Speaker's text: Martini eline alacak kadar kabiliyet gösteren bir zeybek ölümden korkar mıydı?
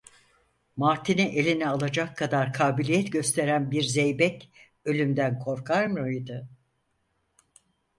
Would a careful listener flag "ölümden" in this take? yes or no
no